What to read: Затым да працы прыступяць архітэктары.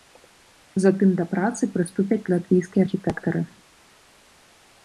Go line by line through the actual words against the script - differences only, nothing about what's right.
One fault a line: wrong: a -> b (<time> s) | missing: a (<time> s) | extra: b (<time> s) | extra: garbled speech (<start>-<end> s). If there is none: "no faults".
extra: латвійскія (2.4 s)